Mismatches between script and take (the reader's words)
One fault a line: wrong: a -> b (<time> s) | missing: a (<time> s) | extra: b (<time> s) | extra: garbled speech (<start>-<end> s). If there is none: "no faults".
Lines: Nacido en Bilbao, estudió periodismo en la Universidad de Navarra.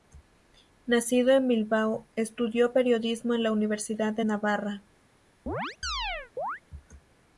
no faults